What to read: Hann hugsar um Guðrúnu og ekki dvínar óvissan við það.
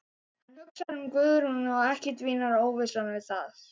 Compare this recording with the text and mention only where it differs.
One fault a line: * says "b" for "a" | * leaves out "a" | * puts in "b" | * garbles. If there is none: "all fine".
all fine